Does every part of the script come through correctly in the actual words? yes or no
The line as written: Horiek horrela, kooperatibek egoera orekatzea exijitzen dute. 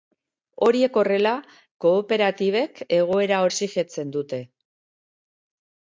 no